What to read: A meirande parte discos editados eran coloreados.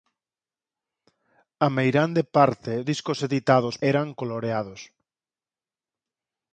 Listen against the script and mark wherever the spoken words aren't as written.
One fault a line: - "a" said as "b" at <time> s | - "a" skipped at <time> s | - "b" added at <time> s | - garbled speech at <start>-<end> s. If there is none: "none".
none